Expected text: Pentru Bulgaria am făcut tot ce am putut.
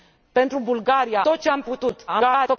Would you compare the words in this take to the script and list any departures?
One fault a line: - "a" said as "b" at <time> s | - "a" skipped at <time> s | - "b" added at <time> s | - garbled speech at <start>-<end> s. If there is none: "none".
- "am făcut" skipped at 1.2 s
- garbled speech at 2.1-2.6 s